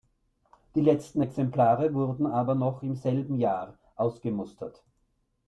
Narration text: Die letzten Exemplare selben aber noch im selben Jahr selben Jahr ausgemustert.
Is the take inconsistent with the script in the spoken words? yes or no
yes